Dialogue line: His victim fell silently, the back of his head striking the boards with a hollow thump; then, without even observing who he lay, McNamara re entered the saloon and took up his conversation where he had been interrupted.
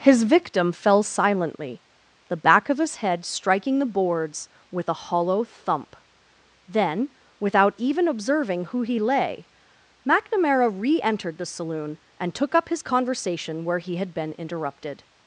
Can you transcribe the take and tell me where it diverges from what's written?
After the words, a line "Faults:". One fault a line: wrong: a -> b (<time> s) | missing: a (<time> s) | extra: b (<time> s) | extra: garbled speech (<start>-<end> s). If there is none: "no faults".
His victim fell silently, the back of his head striking the boards with a hollow thump; then, without even observing who he lay, McNamara re entered the saloon and took up his conversation where he had been interrupted.
Faults:
no faults